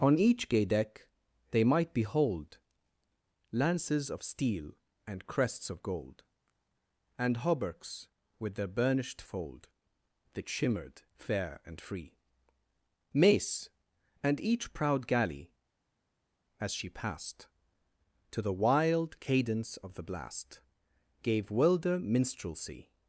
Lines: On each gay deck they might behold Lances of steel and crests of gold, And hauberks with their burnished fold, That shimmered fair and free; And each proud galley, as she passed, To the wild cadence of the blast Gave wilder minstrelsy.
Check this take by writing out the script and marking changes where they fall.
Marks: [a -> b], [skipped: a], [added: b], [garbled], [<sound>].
On each gay deck they might behold Lances of steel and crests of gold, And hauberks with their burnished fold, That shimmered fair and free; [added: mace] And each proud galley, as she passed, To the wild cadence of the blast Gave wilder minstrelsy.